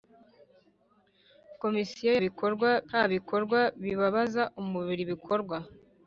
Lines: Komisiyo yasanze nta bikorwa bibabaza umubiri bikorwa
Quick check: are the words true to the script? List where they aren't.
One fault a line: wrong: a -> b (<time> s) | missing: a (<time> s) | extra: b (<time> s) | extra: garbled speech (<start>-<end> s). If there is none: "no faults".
wrong: yasanze -> bikorwa (2.2 s)